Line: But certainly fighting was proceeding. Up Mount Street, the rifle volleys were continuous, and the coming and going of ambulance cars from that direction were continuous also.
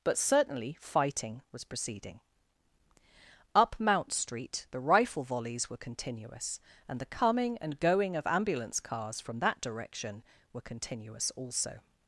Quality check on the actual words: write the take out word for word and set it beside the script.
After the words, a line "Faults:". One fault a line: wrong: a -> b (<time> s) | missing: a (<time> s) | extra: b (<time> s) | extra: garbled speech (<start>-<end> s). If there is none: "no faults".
But certainly fighting was proceeding. Up Mount Street, the rifle volleys were continuous, and the coming and going of ambulance cars from that direction were continuous also.
Faults:
no faults